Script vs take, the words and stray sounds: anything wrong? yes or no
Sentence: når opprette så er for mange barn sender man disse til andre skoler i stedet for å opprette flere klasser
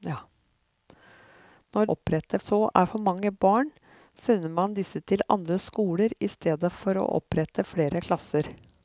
no